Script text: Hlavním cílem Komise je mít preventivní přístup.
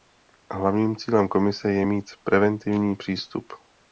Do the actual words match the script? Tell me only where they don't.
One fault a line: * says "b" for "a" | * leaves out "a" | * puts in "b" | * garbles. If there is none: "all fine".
all fine